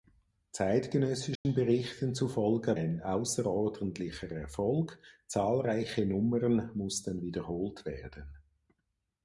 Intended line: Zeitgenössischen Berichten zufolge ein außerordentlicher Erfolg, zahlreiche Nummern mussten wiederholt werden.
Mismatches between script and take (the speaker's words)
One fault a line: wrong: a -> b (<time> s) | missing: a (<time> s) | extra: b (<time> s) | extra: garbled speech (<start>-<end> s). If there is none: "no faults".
no faults